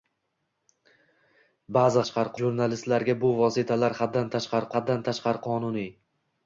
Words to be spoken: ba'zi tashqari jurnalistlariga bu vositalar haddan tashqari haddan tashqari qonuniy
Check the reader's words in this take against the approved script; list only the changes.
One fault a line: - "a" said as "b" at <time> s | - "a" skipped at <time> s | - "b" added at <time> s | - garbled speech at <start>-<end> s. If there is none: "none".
none